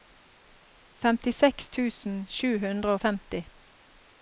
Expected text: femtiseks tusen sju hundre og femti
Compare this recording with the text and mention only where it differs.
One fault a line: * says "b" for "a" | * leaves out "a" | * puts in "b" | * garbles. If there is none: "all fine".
all fine